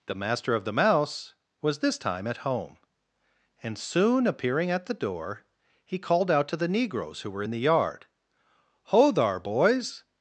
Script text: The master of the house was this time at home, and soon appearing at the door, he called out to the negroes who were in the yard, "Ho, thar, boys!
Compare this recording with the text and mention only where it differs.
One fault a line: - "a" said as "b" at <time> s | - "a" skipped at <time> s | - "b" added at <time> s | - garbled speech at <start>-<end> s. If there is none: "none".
- "house" said as "mouse" at 0.7 s